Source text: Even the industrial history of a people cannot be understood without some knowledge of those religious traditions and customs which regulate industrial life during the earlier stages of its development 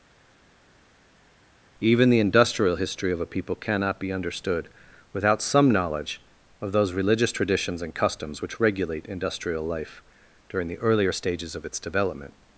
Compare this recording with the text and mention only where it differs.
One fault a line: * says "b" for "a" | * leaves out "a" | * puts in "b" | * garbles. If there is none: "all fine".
all fine